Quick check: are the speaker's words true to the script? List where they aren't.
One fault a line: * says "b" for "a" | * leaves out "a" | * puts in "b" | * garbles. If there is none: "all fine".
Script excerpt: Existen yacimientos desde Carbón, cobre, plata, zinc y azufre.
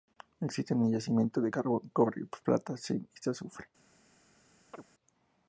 * says "de" for "desde"